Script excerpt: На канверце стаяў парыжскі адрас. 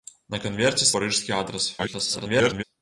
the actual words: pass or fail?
fail